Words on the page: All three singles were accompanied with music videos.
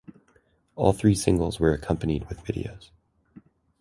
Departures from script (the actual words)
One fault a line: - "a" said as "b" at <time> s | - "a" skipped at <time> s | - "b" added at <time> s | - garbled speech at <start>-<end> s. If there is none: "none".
- "music" skipped at 2.5 s